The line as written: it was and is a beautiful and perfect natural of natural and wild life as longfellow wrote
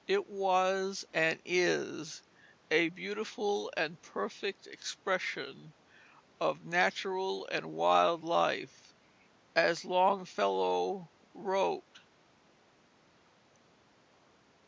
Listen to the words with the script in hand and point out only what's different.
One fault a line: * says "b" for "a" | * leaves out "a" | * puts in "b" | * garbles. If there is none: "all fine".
* says "expression" for "natural"